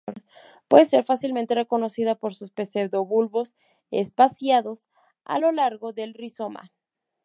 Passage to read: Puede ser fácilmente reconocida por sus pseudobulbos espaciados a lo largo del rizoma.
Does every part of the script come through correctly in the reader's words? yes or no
yes